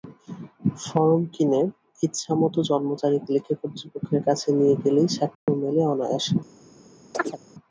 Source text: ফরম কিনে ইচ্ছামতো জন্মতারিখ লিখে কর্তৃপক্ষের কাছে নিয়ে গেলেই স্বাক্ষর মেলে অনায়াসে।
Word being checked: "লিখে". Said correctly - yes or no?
yes